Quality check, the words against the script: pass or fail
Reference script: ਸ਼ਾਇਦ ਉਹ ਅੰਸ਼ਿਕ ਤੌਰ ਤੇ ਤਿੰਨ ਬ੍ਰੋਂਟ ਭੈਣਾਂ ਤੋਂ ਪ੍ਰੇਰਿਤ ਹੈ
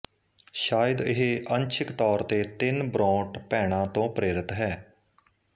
fail